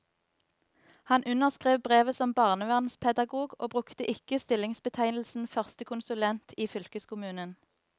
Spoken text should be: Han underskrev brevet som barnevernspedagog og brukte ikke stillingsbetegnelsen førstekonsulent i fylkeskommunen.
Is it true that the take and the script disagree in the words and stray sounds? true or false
false